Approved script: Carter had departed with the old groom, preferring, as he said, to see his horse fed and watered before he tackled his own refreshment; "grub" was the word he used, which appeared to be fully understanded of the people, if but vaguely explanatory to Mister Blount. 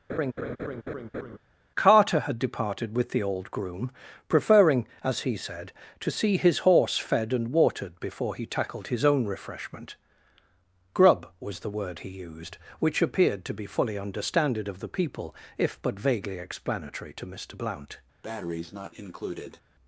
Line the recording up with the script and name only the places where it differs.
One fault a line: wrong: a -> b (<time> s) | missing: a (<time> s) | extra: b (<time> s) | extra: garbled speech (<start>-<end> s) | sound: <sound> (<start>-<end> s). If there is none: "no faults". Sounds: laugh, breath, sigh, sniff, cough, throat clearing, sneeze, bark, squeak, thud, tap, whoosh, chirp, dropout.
sound: laugh (0.1-1.4 s)
sound: breath (18.2-19.6 s)